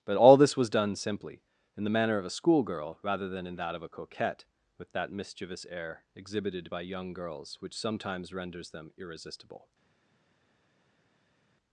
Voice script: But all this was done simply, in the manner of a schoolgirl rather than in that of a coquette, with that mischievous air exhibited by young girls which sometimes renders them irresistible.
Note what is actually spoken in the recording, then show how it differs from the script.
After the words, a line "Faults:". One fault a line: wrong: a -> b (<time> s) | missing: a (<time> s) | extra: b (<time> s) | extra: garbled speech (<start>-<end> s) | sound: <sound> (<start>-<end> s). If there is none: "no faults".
But all this was done simply, in the manner of a schoolgirl rather than in that of a coquette, with that mischievous air exhibited by young girls which sometimes renders them irresistible.
Faults:
no faults